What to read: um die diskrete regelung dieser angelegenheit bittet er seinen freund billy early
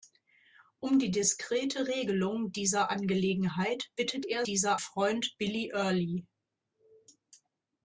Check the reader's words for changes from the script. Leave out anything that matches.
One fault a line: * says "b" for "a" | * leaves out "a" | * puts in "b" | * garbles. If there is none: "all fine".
* says "dieser" for "seinen"